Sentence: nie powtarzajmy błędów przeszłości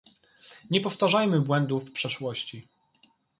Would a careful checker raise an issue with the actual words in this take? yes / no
no